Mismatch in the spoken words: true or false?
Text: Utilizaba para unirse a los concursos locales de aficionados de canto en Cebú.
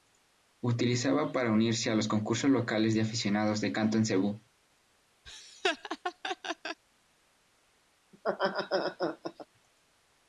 false